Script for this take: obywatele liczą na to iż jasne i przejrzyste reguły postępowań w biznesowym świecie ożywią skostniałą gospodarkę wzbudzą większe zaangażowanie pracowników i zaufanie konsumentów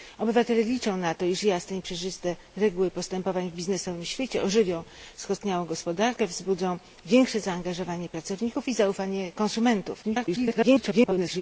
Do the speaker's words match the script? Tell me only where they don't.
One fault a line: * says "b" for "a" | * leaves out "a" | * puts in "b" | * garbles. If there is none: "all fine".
* garbles